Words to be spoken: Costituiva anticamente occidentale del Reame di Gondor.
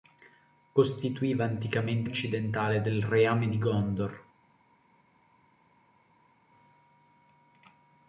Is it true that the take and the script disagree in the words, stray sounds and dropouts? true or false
false